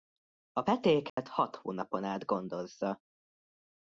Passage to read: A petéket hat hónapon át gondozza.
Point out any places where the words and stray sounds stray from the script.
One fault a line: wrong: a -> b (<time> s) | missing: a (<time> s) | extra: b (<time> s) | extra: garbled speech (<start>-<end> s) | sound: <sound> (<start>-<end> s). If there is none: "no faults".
sound: dropout (1.1-1.2 s)